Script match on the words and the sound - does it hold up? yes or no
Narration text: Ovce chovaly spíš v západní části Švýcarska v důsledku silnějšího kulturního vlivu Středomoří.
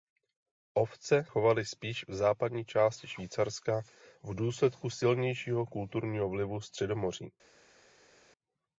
yes